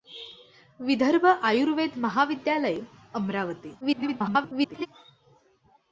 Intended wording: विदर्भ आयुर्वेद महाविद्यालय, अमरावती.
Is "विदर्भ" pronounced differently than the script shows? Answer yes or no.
no